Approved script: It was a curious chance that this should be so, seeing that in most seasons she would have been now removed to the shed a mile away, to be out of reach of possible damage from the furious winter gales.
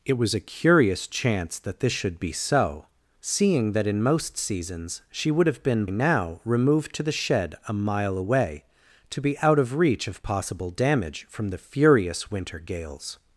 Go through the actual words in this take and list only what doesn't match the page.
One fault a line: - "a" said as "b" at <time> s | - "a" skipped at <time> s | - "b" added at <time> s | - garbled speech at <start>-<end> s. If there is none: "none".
none